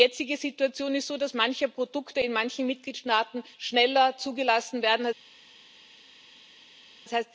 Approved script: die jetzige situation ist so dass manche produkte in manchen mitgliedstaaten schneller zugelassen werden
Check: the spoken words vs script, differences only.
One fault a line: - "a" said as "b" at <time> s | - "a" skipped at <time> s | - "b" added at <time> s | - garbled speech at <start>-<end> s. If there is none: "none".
none